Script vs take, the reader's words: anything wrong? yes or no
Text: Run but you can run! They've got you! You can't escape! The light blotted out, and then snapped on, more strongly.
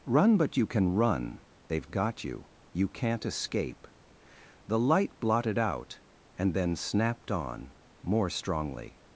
no